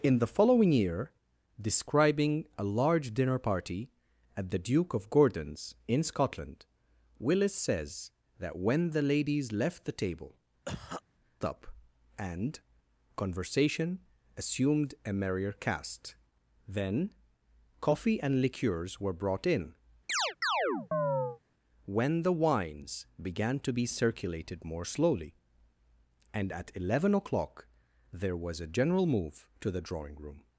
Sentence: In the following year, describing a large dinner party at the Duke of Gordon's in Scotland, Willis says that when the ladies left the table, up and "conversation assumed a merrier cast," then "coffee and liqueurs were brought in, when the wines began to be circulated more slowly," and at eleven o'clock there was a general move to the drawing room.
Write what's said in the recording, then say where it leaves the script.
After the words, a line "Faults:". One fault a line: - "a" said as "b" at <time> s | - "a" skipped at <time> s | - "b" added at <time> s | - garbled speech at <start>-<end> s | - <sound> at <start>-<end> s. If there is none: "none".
In the following year, describing a large dinner party at the Duke of Gordon's in Scotland, Willis says that when the ladies left the table, up and "conversation assumed a merrier cast," then "coffee and liqueurs were brought in, when the wines began to be circulated more slowly," and at eleven o'clock there was a general move to the drawing room.
Faults:
- cough at 10.7-11.0 s
- chirp at 20.1-21.4 s